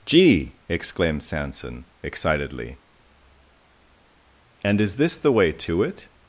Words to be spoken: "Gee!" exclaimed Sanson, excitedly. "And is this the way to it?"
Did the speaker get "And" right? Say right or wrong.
right